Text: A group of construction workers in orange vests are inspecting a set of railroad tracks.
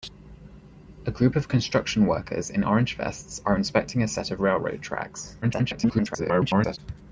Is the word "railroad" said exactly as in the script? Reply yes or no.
yes